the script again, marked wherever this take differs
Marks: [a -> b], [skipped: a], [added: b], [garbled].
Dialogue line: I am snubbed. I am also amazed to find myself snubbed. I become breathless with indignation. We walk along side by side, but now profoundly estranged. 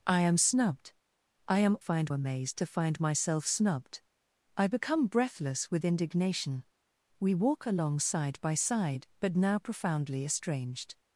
I am snubbed. I am [also -> find] amazed to find myself snubbed. I become breathless with indignation. We walk along side by side, but now profoundly estranged.